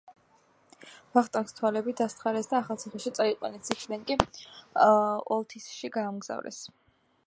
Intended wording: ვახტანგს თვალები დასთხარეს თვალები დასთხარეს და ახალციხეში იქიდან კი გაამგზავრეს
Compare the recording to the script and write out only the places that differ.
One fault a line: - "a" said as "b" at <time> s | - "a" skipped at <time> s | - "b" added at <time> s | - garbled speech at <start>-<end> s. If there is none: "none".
- "თვალები დასთხარეს" skipped at 2.5 s
- "წაიყვანეს" added at 3.2 s
- "ოლთისში" added at 5.4 s